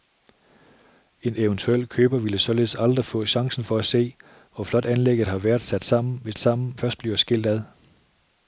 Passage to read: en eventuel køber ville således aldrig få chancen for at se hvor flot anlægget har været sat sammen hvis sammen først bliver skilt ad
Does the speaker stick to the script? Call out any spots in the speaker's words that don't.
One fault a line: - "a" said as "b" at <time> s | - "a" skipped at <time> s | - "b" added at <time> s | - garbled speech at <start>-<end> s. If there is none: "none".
none